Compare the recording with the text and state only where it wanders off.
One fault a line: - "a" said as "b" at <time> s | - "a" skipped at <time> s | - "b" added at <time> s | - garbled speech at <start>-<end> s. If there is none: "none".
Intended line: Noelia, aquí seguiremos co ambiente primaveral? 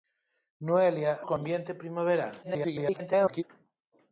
- "aquí seguiremos" skipped at 1.1 s
- garbled speech at 2.4-3.4 s